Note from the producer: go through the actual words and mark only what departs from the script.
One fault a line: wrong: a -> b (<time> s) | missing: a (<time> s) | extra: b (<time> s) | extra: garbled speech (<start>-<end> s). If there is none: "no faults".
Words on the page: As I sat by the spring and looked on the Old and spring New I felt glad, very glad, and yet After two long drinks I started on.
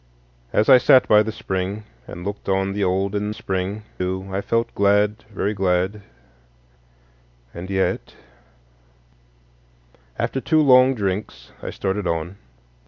no faults